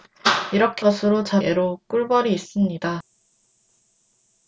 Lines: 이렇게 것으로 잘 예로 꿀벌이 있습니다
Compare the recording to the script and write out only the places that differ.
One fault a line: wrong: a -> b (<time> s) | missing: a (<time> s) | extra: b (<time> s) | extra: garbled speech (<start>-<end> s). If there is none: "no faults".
no faults